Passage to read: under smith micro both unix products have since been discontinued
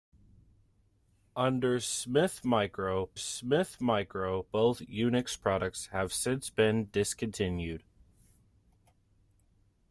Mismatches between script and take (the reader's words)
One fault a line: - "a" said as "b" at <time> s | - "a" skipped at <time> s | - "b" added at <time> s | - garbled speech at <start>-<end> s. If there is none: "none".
- "smith micro" added at 3.1 s